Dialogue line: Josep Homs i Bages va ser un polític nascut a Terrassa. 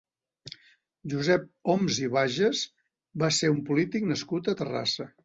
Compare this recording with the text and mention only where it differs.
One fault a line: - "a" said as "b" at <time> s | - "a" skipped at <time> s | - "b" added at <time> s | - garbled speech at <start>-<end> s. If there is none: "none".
none